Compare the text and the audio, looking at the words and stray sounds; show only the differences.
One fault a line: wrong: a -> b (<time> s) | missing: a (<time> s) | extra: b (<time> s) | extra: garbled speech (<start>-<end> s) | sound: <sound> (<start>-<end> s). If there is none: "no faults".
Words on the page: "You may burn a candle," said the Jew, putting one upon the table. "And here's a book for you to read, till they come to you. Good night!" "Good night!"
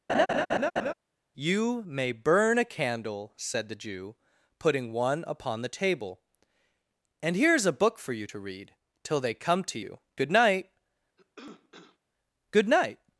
sound: laugh (0.1-0.9 s)
sound: cough (11.2-12.0 s)